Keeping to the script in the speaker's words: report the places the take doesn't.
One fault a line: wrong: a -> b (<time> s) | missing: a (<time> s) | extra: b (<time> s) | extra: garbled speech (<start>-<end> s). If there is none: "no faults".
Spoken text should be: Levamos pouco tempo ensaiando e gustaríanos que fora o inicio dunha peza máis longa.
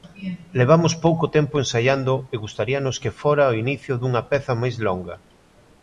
no faults